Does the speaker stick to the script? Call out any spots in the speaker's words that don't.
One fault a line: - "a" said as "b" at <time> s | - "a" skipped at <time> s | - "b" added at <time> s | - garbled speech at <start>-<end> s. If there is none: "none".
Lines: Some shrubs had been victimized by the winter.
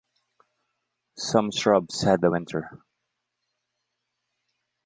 - "been victimized by" skipped at 2.2 s